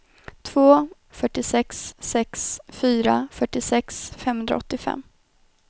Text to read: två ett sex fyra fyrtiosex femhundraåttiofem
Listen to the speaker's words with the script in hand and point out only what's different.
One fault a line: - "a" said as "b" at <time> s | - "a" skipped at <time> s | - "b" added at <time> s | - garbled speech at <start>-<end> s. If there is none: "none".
- "ett" said as "fyrtiosex" at 1.1 s